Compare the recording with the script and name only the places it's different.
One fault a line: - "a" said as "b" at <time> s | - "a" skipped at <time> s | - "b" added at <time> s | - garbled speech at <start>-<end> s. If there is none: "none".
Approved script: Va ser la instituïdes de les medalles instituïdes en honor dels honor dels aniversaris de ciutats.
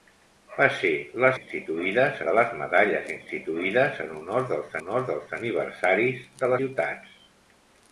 none